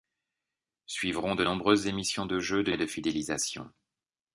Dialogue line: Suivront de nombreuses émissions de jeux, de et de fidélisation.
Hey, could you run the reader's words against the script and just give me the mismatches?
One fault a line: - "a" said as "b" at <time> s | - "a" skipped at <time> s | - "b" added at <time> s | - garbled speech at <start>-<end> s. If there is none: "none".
none